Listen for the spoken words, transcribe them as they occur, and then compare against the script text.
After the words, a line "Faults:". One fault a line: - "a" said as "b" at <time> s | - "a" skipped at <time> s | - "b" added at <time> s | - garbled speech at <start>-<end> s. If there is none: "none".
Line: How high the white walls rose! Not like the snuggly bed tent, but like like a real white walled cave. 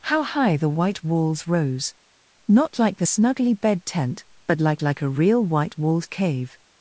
How high the white walls rose! Not like the snuggly bed tent, but like like a real white walled cave.
Faults:
none